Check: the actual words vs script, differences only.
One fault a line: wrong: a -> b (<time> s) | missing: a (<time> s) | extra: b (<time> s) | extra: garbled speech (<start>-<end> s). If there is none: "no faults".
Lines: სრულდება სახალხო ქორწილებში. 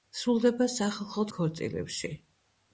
no faults